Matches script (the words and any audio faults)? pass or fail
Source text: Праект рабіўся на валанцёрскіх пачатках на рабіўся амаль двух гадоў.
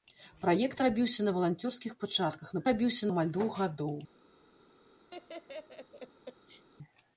fail